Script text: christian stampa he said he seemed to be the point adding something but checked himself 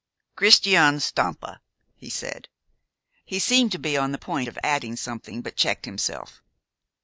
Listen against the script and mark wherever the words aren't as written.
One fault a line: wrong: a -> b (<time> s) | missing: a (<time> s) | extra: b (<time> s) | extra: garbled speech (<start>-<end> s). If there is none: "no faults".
extra: on (4.0 s)
extra: of (4.5 s)